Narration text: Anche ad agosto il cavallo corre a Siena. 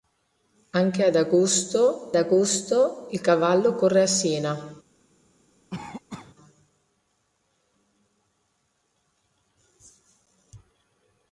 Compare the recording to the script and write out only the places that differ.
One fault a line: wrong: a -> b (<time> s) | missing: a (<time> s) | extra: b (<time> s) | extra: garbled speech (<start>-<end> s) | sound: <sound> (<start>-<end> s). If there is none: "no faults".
extra: agosto (2.1 s)
sound: cough (5.7-6.4 s)